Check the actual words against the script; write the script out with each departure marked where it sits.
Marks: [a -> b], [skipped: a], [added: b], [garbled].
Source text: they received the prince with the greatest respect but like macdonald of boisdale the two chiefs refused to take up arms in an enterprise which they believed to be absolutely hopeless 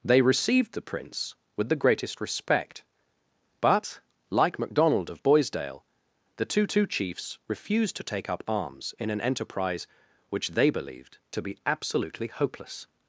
they received the prince with the greatest respect but like macdonald of boisdale the two [added: two] chiefs refused to take up arms in an enterprise which they believed to be absolutely hopeless